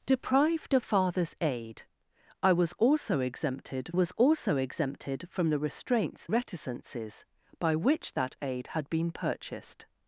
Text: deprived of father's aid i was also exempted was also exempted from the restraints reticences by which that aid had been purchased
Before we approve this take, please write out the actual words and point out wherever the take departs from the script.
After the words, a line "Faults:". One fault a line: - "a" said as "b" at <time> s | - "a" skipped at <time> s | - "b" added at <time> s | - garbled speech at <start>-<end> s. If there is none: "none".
deprived of father's aid i was also exempted was also exempted from the restraints reticences by which that aid had been purchased
Faults:
none